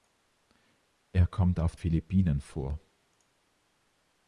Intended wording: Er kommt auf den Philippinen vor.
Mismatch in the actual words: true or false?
true